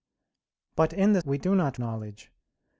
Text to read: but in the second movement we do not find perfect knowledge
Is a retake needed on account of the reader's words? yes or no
yes